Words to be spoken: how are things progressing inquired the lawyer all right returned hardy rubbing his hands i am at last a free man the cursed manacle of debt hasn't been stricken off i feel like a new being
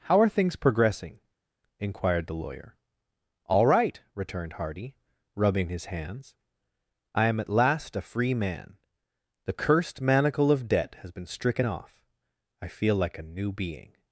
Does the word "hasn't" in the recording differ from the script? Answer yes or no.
yes